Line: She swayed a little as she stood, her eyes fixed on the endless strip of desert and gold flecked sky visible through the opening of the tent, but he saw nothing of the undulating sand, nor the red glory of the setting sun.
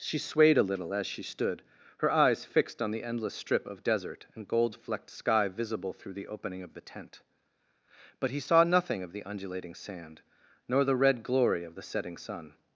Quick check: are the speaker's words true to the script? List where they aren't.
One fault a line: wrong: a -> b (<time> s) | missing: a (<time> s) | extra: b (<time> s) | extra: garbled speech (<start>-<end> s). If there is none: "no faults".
no faults